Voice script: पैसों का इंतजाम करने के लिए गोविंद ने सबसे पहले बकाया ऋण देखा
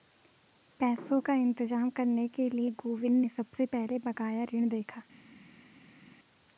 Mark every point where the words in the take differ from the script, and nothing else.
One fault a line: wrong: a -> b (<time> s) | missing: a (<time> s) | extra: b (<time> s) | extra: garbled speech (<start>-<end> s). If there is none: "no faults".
no faults